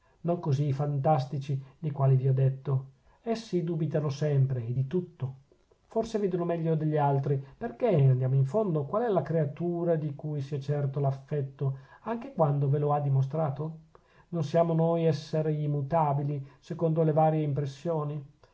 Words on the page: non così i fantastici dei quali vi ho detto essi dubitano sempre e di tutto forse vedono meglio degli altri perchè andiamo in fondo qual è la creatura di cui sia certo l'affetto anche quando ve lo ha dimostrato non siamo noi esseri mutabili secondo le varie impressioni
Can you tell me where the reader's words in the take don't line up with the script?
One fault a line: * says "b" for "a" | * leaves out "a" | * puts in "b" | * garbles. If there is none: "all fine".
all fine